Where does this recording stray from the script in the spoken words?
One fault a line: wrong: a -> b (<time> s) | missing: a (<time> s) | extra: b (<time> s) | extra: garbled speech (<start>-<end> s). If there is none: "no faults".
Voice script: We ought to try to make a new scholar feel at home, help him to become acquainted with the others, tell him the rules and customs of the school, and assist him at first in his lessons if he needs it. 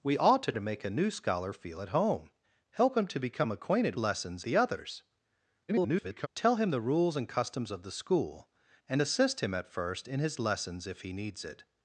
missing: try (0.5 s)
wrong: with -> lessons (4.0 s)
extra: garbled speech (5.7-6.3 s)